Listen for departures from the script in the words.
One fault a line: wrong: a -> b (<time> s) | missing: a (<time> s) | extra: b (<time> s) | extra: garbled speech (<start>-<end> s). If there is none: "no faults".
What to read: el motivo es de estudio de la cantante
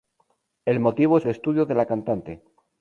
no faults